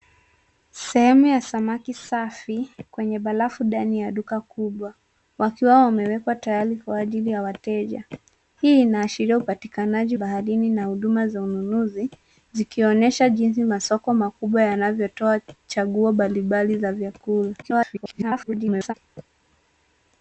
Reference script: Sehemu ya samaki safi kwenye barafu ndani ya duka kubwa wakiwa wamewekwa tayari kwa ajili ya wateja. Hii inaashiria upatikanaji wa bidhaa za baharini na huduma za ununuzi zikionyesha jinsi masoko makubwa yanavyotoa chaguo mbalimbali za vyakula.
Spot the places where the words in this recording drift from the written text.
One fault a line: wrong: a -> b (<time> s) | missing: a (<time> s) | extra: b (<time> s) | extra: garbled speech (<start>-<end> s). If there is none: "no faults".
missing: wa bidhaa za (10.2 s)
extra: garbled speech (17.6-18.9 s)